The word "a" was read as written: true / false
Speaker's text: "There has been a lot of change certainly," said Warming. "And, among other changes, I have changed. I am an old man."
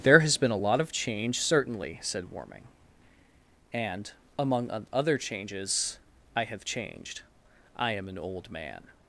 true